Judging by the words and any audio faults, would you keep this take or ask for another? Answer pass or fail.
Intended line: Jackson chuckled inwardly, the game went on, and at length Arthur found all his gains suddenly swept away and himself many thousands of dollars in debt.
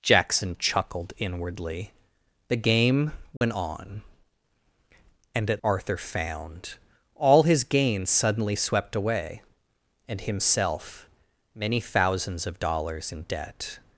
fail